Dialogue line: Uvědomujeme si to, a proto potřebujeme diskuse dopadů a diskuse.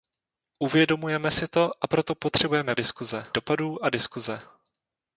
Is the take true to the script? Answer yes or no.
yes